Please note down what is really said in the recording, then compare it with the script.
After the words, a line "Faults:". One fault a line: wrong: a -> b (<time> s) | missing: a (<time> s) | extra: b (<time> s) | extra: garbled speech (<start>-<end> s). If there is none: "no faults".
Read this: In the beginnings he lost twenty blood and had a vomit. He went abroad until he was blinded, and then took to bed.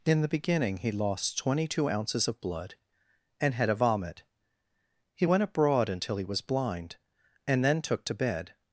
In the beginning he lost twenty two ounces of blood and had a vomit. He went abroad until he was blind, and then took to bed.
Faults:
wrong: beginnings -> beginning (0.3 s)
extra: two ounces of (1.7 s)
wrong: blinded -> blind (6.4 s)